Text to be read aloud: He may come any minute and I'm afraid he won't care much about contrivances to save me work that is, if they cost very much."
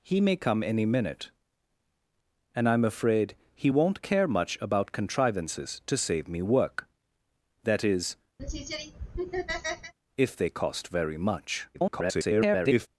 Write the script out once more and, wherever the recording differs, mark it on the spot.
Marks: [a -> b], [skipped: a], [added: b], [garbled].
He may come any minute and I'm afraid he won't care much about contrivances to save me work that is, if they cost very much." [garbled]